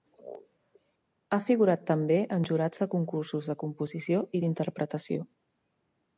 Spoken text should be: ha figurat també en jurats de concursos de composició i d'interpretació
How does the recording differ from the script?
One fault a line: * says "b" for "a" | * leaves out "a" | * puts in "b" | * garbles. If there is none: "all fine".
all fine